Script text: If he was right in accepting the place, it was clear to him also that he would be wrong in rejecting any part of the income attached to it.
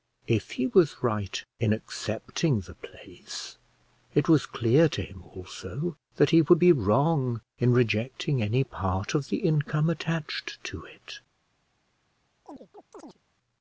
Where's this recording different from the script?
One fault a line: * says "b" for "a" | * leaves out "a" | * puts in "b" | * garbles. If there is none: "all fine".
all fine